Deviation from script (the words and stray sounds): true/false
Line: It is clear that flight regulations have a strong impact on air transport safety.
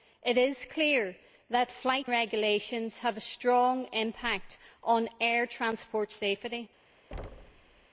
true